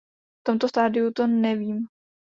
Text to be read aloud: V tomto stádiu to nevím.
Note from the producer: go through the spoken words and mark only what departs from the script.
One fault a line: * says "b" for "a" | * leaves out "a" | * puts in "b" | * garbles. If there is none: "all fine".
all fine